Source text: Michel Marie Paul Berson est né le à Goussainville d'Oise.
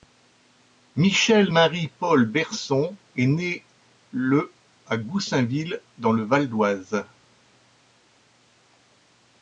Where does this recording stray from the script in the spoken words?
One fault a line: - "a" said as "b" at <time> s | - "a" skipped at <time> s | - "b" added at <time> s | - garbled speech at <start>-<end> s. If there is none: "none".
- "dans le Val" added at 6.0 s